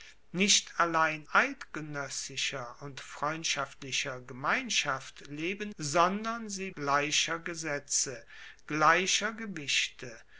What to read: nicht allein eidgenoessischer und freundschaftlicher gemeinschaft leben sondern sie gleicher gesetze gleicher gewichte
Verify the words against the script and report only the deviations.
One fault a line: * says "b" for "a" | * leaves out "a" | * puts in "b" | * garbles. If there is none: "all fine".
all fine